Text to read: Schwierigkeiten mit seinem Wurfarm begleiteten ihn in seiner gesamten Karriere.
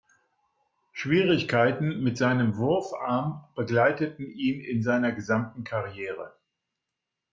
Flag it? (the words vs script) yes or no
no